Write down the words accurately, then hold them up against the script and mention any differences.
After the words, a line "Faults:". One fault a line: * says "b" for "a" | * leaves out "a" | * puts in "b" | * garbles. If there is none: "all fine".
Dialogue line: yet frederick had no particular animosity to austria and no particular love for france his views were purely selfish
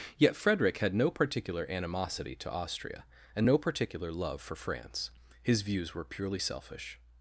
yet frederick had no particular animosity to austria and no particular love for france his views were purely selfish
Faults:
all fine